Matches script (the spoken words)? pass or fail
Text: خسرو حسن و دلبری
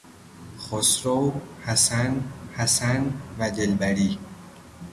fail